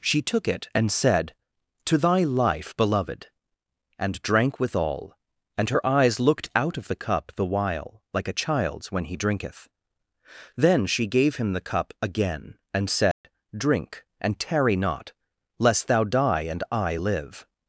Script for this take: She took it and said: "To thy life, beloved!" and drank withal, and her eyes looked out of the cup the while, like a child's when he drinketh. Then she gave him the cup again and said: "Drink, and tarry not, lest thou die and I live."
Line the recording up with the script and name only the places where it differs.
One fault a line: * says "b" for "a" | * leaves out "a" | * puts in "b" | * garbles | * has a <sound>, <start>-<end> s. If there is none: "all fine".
* has a dropout, 13.1-13.2 s